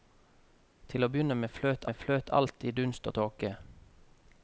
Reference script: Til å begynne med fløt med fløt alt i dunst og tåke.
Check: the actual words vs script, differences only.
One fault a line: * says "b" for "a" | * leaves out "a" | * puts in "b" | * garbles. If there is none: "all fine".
all fine